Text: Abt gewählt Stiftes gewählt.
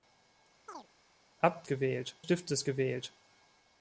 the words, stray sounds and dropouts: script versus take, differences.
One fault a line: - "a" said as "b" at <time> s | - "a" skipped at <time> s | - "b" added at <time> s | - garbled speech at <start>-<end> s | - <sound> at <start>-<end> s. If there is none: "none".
- chirp at 0.7-0.9 s